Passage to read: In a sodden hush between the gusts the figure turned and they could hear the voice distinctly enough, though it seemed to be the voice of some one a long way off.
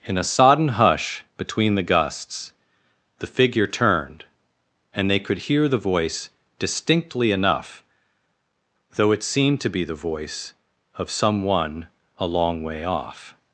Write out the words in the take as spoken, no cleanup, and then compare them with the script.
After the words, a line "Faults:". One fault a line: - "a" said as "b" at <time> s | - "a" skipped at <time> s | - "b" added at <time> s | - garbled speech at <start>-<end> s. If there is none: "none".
In a sodden hush between the gusts the figure turned and they could hear the voice distinctly enough, though it seemed to be the voice of some one a long way off.
Faults:
none